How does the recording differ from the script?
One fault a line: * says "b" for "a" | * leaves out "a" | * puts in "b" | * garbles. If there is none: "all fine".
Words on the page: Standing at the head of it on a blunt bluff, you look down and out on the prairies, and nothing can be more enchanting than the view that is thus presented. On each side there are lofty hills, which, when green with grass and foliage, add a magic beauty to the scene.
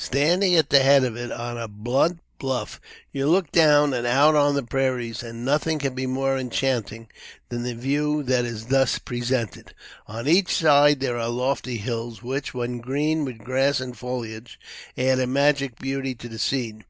all fine